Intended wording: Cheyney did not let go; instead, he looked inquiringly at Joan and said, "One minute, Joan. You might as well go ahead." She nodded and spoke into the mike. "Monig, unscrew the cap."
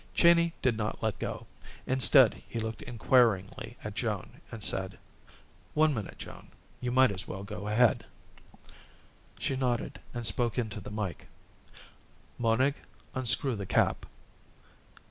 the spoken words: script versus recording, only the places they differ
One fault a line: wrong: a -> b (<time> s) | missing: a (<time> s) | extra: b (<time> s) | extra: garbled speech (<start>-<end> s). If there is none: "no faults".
no faults